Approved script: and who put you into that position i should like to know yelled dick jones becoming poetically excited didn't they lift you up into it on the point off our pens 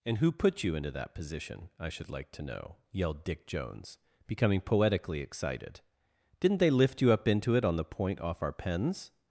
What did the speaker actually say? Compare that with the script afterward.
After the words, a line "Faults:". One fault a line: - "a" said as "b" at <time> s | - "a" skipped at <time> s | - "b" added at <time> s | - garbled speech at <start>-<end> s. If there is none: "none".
and who put you into that position i should like to know yelled dick jones becoming poetically excited didn't they lift you up into it on the point off our pens
Faults:
none